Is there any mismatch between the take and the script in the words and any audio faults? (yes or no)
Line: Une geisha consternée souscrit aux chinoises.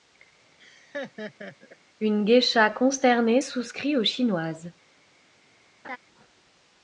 yes